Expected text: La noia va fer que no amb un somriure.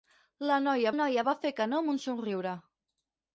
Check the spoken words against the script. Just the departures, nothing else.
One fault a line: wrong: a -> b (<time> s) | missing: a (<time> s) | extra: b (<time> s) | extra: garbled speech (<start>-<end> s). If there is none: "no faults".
extra: noia (1.0 s)